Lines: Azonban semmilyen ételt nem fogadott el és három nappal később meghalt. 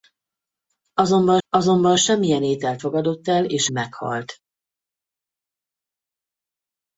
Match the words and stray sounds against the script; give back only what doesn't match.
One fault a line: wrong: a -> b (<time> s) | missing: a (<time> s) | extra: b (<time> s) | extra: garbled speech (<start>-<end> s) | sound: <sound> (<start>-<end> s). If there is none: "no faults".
extra: azonban (1.5 s)
missing: nem (2.8 s)
missing: három nappal később (3.7 s)